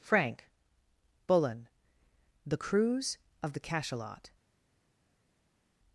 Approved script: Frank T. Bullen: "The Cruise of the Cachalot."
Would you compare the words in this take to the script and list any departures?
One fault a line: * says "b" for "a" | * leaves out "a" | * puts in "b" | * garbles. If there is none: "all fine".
* leaves out "T"